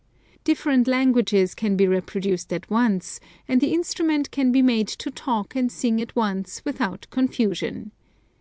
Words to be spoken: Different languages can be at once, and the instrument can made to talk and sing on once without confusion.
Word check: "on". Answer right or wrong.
wrong